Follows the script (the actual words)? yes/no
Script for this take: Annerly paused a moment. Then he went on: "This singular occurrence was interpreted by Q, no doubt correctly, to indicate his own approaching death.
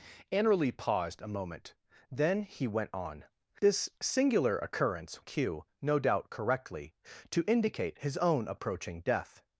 no